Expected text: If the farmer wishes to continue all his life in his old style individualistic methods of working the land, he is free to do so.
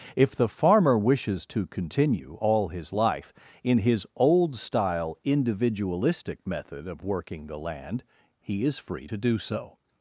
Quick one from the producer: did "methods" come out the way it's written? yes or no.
no